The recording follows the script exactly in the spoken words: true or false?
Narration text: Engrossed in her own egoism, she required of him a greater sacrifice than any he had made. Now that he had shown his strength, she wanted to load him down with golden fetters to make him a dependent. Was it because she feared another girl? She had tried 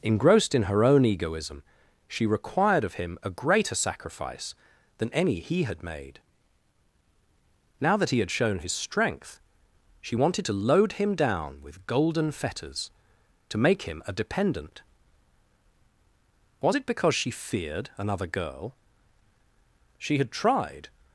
true